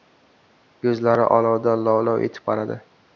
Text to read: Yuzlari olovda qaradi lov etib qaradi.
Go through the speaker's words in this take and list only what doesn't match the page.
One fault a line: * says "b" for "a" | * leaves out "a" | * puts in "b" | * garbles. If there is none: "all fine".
* says "lov" for "qaradi"